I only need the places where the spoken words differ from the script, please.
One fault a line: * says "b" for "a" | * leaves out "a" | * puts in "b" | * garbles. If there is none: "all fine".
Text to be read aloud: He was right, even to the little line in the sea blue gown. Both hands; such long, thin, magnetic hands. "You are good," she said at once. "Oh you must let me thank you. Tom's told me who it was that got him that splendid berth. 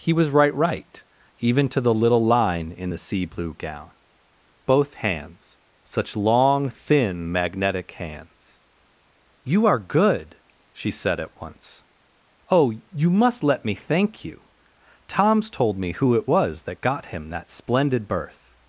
* puts in "right"